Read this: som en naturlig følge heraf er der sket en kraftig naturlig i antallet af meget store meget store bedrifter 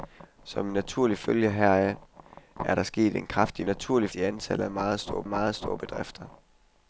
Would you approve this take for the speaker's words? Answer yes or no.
yes